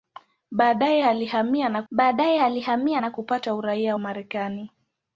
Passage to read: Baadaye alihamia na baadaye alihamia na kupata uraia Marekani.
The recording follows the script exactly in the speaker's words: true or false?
true